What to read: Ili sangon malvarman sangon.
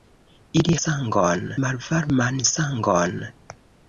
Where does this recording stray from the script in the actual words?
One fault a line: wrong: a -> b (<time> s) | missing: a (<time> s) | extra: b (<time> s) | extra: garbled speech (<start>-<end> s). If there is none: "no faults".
no faults